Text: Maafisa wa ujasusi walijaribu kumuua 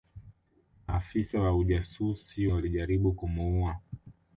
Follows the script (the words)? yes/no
yes